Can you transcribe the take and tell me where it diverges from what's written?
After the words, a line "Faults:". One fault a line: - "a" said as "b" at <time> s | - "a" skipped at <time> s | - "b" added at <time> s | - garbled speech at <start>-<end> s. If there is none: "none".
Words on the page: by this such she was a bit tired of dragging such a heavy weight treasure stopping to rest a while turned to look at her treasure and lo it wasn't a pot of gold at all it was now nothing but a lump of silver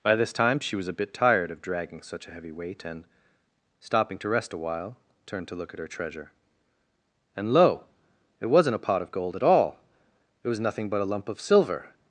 by this time she was a bit tired of dragging such a heavy weight and stopping to rest a while turned to look at her treasure and lo it wasn't a pot of gold at all it was nothing but a lump of silver
Faults:
- "such" said as "time" at 0.3 s
- "treasure" said as "and" at 2.8 s
- "now" skipped at 10.6 s